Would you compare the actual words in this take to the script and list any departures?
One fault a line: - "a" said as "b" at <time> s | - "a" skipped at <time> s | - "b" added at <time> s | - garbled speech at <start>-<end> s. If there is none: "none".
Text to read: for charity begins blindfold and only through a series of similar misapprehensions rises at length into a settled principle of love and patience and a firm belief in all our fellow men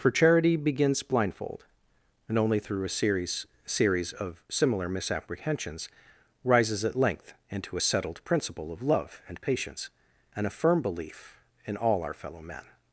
- "series" added at 3.7 s